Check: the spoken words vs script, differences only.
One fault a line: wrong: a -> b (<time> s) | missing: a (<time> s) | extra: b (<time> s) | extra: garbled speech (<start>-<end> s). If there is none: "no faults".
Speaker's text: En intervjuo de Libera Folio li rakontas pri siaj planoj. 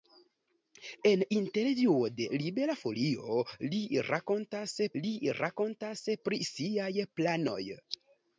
extra: li rakontas (5.0 s)